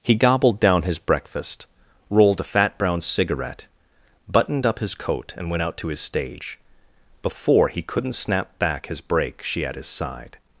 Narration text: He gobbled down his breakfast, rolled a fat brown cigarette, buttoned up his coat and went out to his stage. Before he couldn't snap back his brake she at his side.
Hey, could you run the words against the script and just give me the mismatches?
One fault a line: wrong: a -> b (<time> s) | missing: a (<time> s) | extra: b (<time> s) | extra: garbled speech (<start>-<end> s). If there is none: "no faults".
no faults